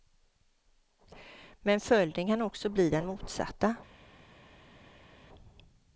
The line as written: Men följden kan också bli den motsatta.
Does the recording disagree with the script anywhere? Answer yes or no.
no